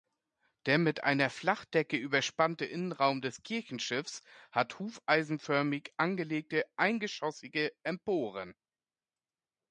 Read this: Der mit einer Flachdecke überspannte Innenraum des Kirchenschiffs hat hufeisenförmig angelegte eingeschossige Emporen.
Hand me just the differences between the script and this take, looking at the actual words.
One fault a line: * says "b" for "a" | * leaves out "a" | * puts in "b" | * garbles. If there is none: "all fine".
all fine